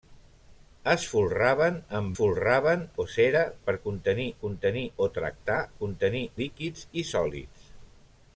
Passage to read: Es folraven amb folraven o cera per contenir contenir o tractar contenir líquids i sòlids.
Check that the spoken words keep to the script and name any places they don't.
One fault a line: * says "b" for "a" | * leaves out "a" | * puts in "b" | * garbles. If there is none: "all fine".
all fine